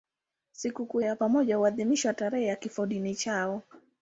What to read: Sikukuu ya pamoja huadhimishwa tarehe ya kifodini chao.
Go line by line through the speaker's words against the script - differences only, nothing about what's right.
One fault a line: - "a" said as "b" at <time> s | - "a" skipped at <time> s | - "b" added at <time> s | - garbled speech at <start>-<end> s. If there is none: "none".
none